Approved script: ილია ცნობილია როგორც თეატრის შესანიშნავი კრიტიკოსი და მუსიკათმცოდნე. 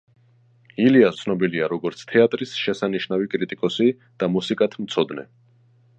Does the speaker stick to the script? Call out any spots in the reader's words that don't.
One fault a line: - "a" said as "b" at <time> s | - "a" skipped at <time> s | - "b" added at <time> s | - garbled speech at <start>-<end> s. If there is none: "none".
none